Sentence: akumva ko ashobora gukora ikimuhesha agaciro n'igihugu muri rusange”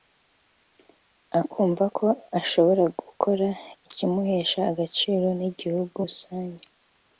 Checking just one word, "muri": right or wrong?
wrong